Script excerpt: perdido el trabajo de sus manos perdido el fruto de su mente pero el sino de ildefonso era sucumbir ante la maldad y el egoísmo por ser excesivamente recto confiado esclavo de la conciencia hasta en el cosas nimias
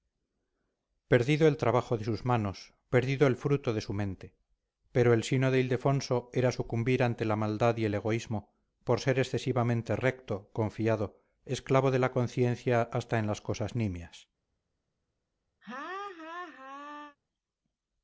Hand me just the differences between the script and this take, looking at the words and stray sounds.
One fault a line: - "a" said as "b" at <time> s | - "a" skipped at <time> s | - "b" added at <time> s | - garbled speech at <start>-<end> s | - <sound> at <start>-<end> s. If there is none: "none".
- "el" said as "las" at 13.3 s
- laugh at 15.6-17.2 s